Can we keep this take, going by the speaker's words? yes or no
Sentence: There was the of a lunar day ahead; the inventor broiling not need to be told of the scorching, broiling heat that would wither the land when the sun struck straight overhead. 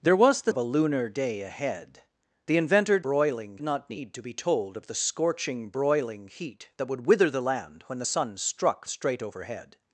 yes